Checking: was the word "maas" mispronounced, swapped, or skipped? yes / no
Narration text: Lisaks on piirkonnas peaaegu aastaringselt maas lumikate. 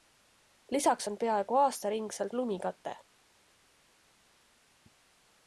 yes